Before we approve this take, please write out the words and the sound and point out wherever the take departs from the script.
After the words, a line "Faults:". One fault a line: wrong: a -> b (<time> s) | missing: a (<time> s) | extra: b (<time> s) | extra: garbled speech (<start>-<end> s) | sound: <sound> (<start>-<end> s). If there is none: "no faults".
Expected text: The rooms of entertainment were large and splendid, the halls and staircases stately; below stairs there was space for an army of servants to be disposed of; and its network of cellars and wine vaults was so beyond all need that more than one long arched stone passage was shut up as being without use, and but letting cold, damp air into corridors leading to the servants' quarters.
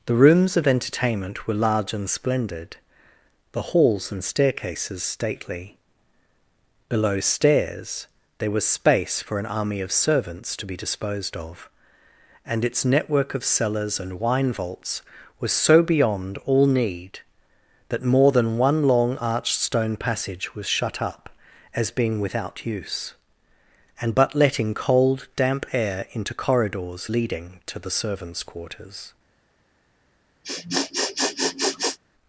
The rooms of entertainment were large and splendid, the halls and staircases stately; below stairs there was space for an army of servants to be disposed of; and its network of cellars and wine vaults was so beyond all need that more than one long arched stone passage was shut up as being without use, and but letting cold, damp air into corridors leading to the servants' quarters.
Faults:
sound: sniff (30.4-32.0 s)